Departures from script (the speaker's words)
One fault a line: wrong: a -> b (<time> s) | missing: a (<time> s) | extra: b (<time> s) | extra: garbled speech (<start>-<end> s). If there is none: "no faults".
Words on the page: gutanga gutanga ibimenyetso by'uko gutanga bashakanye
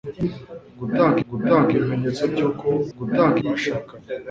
no faults